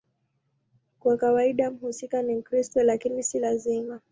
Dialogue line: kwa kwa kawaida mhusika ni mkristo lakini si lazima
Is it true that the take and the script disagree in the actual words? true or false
true